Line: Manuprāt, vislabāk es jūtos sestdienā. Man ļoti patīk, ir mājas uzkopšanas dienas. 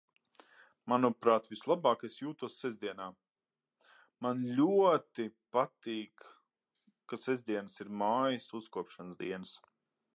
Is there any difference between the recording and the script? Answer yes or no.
yes